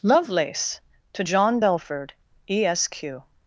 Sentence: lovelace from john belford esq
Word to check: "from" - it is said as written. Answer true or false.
false